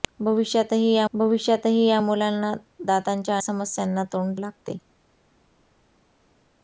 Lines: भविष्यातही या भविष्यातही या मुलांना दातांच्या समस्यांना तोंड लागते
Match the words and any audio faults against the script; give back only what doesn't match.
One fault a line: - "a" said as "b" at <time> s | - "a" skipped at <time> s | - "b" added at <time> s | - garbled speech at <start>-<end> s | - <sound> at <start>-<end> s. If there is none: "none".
none